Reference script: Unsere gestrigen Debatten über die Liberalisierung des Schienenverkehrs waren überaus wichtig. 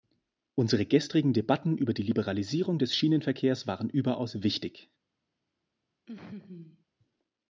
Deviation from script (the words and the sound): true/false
true